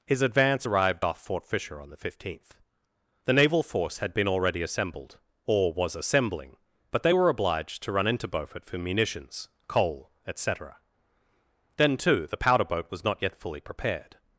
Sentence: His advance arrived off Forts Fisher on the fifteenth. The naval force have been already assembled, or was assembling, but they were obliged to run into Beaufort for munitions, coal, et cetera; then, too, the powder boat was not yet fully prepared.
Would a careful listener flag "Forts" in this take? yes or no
yes